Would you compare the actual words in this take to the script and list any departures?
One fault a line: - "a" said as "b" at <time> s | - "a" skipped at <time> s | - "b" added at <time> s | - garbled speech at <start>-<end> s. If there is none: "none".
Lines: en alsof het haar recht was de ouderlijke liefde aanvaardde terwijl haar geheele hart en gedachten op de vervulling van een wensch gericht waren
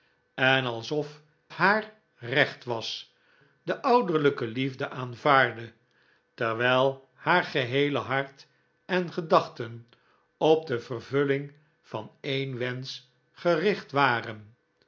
- "het" skipped at 1.2 s